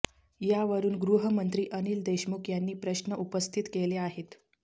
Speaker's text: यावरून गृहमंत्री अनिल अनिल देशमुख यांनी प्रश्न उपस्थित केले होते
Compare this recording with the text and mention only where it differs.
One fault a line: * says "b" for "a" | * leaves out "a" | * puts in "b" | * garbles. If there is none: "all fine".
* leaves out "अनिल"
* says "आहेत" for "होते"